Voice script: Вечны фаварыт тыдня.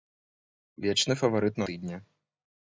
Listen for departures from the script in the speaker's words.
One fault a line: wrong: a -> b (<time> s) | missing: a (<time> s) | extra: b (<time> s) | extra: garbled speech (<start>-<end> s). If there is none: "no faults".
no faults